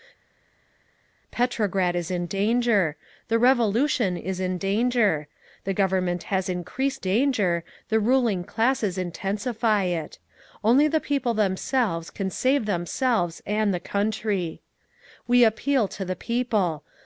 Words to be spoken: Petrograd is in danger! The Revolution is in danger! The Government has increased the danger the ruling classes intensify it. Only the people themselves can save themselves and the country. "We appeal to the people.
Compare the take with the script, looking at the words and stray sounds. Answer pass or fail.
fail